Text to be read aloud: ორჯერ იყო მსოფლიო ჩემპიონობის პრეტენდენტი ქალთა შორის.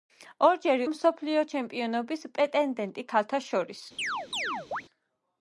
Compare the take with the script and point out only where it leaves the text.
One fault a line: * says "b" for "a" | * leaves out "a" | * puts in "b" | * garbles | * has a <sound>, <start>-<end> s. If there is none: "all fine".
* leaves out "იყო"
* has a chirp, 4.0-4.8 s